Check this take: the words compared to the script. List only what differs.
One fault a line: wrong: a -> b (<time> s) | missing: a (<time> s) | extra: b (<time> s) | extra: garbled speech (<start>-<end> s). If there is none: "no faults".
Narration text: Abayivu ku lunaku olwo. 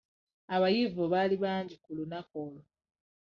extra: baali bangi (1.1 s)